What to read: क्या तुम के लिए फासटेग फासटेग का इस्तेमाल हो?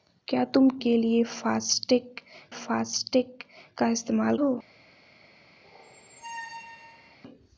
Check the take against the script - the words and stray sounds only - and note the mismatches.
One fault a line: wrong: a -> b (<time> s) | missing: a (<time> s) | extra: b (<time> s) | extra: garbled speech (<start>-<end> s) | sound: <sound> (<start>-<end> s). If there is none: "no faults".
sound: squeak (5.6-7.2 s)